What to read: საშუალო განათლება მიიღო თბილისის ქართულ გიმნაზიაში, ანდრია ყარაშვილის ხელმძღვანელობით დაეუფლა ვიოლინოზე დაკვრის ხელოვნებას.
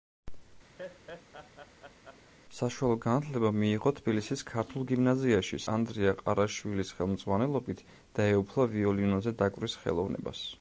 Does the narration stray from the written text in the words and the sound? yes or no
yes